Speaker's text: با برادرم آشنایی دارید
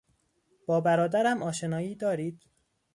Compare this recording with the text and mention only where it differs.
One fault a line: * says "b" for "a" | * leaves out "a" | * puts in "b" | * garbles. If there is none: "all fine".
all fine